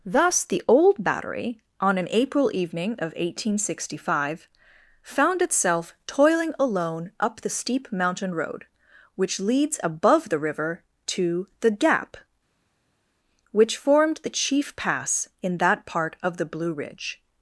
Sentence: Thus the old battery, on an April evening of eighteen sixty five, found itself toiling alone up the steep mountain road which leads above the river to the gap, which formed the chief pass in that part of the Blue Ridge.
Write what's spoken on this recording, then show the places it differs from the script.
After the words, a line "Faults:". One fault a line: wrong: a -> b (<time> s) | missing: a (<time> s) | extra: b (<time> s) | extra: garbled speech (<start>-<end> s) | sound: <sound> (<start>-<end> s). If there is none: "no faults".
Thus the old battery, on an April evening of eighteen sixty five, found itself toiling alone up the steep mountain road which leads above the river to the gap, which formed the chief pass in that part of the Blue Ridge.
Faults:
no faults